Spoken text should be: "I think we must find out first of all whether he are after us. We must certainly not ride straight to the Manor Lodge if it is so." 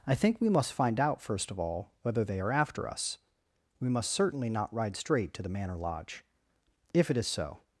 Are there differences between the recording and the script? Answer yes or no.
yes